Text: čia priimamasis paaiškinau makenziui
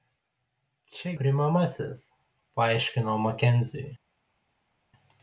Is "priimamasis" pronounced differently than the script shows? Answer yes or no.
no